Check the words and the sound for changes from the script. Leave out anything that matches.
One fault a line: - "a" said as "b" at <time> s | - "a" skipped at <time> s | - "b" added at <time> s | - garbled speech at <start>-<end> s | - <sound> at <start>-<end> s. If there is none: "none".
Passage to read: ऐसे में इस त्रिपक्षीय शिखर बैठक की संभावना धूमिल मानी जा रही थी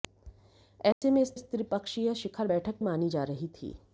- dropout at 0.9-1.0 s
- "इस" added at 1.3 s
- "की संभावना धूमिल" skipped at 2.8 s